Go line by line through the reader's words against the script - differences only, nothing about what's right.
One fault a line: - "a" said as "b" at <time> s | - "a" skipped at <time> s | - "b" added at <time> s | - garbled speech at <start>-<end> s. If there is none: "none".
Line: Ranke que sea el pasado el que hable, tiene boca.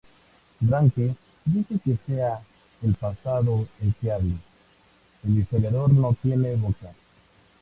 - "dice" added at 1.4 s
- "el historiador no" added at 5.2 s